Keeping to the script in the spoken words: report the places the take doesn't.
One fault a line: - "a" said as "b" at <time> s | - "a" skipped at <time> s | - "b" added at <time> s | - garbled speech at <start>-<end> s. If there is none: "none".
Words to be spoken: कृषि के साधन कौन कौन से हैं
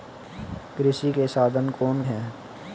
- "कौन से" skipped at 2.0 s